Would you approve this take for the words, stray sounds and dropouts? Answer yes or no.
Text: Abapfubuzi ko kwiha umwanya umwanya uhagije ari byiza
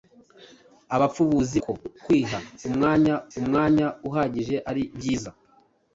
yes